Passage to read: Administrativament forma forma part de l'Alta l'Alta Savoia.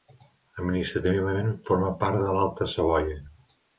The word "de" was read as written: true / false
true